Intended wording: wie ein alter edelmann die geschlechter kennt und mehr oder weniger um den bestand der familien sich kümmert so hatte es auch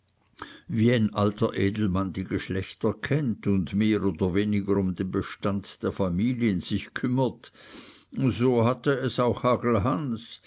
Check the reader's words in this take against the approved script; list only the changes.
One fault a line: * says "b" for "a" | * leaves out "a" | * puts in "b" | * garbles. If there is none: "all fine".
all fine